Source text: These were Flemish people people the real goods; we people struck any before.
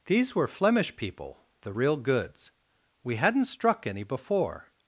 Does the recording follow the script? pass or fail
fail